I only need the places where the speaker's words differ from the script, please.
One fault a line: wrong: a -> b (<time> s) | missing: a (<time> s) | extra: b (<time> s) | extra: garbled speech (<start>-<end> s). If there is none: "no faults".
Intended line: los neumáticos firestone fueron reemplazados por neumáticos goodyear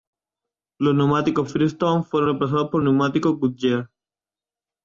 no faults